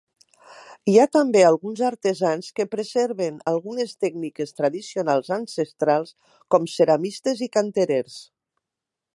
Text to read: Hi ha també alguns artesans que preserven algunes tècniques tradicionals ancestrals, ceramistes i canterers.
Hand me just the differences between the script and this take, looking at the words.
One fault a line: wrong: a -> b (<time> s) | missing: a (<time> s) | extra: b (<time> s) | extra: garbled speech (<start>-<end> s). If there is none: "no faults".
extra: com (6.6 s)